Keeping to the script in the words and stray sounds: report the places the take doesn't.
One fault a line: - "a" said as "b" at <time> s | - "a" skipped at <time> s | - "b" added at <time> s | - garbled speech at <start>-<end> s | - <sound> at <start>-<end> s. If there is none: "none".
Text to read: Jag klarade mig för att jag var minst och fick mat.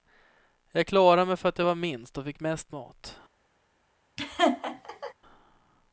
- "mest" added at 2.4 s
- laugh at 4.2-5.1 s